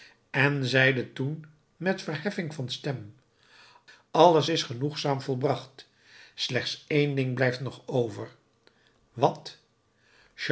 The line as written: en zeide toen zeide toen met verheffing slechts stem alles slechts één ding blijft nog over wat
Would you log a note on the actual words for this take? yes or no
yes